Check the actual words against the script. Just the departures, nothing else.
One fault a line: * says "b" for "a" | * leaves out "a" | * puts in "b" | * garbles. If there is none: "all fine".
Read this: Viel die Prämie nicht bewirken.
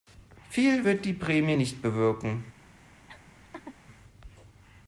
* puts in "wird"